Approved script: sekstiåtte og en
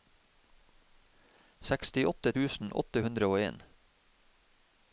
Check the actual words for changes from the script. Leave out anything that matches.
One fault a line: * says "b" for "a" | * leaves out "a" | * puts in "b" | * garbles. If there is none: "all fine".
* puts in "tusen åtte hundre"